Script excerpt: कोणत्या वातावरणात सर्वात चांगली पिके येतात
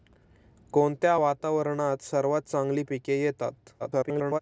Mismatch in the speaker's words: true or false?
true